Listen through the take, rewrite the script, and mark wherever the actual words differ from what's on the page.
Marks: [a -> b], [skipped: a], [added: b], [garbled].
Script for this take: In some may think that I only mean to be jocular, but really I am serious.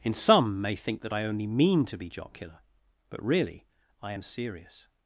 In some may think that I only mean to be jocular, but really I am serious.